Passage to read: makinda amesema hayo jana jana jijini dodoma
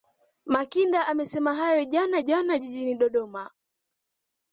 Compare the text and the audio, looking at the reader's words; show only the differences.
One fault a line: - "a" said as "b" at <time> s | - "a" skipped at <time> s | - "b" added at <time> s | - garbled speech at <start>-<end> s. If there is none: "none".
none